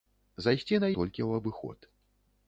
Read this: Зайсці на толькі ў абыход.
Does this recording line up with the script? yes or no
yes